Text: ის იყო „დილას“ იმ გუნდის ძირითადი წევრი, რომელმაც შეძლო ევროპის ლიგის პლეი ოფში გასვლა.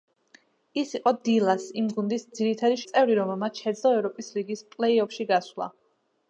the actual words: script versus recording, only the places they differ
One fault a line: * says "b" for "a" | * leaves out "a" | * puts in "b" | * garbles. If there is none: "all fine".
all fine